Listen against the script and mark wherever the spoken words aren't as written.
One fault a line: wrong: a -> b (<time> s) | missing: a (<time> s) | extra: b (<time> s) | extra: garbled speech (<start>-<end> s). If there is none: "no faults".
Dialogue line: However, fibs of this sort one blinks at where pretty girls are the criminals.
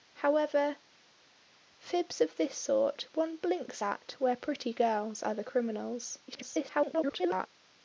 extra: garbled speech (6.3-7.5 s)